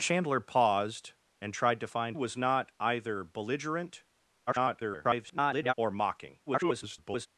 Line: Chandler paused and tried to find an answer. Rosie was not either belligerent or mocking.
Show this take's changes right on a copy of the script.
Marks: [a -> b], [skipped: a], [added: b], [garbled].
Chandler paused and tried to find [skipped: an answer. Rosie] was not either belligerent [garbled] or mocking. [garbled]